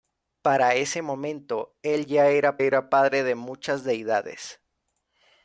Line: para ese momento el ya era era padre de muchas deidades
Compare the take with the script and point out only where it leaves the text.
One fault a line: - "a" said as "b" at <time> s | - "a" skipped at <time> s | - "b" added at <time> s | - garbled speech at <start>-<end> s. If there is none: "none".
none